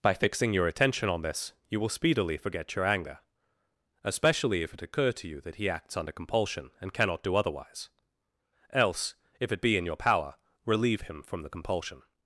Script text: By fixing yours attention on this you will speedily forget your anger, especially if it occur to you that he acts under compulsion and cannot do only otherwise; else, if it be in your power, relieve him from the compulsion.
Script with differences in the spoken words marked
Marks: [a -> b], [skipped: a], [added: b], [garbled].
By fixing [yours -> your] attention on this you will speedily forget your anger, especially if it occur to you that he acts under compulsion and cannot do [skipped: only] otherwise; else, if it be in your power, relieve him from the compulsion.